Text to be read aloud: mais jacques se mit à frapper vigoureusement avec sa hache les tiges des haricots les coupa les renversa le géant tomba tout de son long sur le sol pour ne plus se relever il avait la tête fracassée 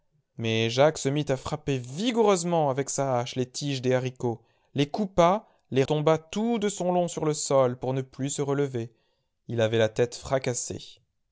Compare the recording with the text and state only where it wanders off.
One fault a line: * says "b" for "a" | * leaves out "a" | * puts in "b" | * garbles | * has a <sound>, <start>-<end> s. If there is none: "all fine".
* leaves out "renversa le géant"